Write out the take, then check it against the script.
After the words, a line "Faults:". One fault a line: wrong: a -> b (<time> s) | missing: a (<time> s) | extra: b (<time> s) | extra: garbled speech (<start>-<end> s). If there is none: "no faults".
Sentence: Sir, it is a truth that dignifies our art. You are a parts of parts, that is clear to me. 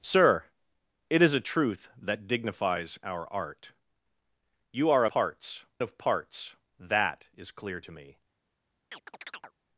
Sir, it is a truth that dignifies our art. You are a parts of parts, that is clear to me.
Faults:
no faults